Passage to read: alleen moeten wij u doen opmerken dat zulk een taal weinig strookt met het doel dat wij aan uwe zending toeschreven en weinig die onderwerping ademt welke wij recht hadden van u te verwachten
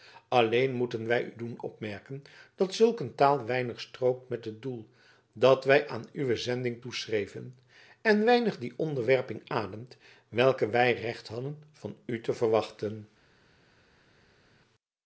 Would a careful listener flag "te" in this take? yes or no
no